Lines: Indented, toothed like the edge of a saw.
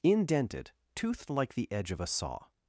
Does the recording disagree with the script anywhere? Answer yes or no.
no